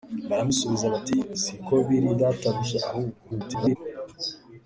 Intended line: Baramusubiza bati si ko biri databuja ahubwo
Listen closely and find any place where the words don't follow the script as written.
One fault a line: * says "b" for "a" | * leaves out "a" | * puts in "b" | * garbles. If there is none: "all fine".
* garbles